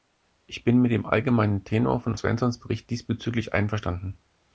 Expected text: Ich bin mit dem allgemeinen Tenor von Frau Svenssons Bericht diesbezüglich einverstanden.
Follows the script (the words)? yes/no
no